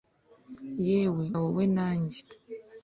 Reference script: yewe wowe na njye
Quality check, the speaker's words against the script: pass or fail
pass